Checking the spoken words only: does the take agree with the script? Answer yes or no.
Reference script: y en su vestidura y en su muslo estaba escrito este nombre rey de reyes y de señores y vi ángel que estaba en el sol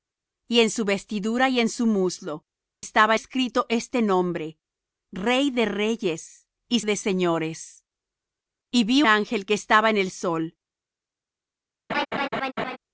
yes